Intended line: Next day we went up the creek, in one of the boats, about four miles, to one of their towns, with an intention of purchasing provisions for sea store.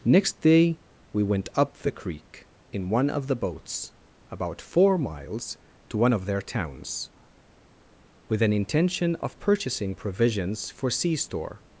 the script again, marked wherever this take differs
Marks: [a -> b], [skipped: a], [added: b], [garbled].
Next day we went up the creek, in one of the boats, about four miles, to one of their towns, with an intention of purchasing provisions for sea store.